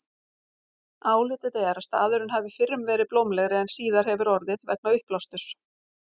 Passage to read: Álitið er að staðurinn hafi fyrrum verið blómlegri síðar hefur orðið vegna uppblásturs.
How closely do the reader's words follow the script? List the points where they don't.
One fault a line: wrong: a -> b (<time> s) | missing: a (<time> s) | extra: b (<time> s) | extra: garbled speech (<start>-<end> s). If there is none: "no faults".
extra: en (3.6 s)